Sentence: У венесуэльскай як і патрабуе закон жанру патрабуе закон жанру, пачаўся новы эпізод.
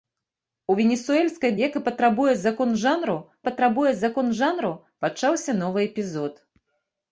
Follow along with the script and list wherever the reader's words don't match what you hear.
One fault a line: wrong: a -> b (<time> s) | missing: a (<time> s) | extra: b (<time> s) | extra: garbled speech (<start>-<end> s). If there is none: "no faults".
no faults